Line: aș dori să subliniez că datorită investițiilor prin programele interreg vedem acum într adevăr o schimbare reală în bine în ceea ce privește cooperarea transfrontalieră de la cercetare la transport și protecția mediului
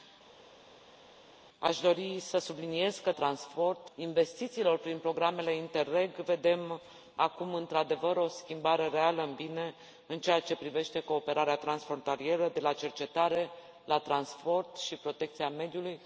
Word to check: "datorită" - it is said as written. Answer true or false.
false